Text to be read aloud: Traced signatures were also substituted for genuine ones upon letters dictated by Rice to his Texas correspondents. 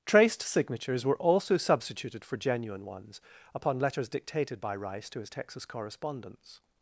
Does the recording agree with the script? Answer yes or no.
yes